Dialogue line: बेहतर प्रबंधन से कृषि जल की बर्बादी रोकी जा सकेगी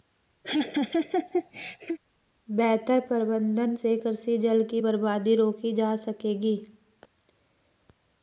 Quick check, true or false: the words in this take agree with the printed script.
true